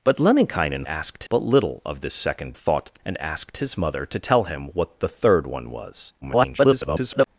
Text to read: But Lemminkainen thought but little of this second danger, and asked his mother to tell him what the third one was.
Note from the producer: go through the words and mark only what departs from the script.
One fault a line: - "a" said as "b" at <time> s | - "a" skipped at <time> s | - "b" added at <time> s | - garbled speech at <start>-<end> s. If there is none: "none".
- "thought" said as "asked" at 0.9 s
- "danger" said as "thought" at 2.5 s
- garbled speech at 6.2-7.3 s